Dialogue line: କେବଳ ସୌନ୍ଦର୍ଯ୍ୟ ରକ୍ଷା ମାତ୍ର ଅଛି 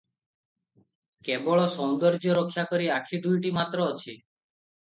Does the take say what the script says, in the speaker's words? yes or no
no